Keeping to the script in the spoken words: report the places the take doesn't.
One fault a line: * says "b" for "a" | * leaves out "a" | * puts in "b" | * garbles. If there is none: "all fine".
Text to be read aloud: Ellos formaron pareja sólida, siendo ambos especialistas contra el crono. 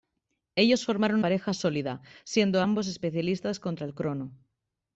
all fine